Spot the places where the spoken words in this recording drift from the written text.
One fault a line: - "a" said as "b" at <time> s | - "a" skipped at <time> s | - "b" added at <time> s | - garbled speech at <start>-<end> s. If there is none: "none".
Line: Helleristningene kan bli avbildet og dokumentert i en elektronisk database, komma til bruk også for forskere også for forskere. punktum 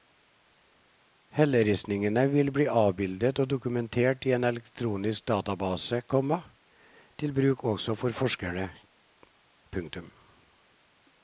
- "kan" said as "vil" at 2.3 s
- "også for forskere" skipped at 8.7 s